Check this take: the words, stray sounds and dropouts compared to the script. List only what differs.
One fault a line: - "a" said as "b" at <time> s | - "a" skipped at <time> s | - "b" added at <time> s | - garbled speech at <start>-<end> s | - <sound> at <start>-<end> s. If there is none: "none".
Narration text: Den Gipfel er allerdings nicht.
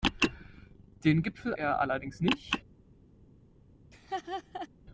- laugh at 3.9-4.7 s